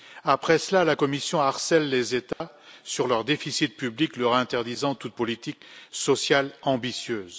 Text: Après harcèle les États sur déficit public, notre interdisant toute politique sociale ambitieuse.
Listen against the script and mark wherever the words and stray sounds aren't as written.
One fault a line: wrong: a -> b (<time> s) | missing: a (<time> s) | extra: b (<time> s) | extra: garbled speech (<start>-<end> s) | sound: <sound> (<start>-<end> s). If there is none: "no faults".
extra: cela la Commission (0.6 s)
sound: dropout (2.3-2.4 s)
extra: leur (3.1 s)
wrong: notre -> leur (4.2 s)